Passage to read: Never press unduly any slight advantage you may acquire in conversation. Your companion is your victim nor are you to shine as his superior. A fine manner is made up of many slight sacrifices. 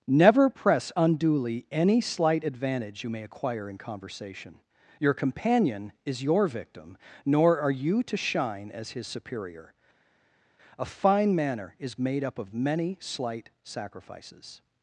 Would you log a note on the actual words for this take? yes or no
no